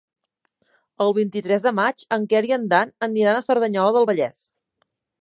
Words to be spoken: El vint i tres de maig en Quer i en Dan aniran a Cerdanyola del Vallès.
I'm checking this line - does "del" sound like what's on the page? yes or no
yes